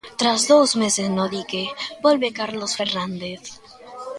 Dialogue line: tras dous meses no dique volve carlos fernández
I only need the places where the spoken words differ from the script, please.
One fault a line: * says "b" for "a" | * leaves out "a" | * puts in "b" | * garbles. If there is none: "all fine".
all fine